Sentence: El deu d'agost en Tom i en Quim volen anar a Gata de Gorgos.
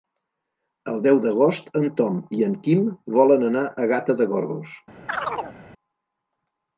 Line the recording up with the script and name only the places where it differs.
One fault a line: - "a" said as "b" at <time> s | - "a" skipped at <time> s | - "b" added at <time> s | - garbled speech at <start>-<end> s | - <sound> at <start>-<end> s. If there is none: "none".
- chirp at 5.1-5.6 s